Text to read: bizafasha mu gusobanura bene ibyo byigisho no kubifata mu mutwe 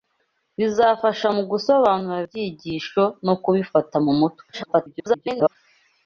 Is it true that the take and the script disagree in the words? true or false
true